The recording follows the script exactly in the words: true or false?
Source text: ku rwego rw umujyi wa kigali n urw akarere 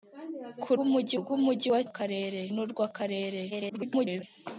false